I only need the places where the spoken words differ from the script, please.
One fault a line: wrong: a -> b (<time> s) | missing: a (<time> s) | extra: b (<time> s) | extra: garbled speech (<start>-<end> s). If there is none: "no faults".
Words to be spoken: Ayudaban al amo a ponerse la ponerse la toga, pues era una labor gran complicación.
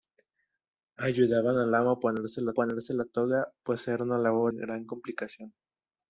no faults